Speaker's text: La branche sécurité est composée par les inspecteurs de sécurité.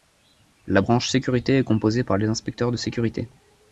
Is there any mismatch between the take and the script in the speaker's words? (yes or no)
no